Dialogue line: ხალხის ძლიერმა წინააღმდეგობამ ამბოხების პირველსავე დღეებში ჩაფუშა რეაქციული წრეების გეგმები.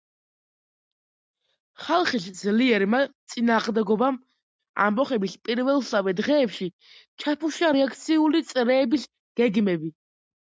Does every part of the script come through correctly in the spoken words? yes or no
yes